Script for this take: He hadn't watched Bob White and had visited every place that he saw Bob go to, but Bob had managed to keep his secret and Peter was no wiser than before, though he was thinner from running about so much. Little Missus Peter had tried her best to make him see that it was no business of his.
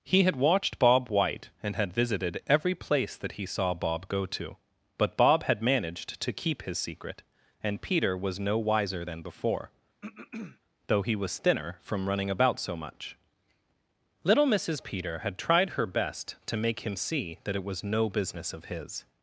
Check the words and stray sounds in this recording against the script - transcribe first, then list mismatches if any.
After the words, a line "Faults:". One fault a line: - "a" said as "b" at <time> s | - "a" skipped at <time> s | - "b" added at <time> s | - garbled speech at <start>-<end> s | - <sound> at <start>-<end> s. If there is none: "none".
He had watched Bob White and had visited every place that he saw Bob go to, but Bob had managed to keep his secret and Peter was no wiser than before, though he was thinner from running about so much. Little Missus Peter had tried her best to make him see that it was no business of his.
Faults:
- "hadn't" said as "had" at 0.2 s
- throat clearing at 10.0-10.6 s